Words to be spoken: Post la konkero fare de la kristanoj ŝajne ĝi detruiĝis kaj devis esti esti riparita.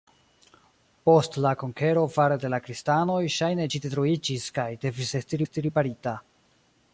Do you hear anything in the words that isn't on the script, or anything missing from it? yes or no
no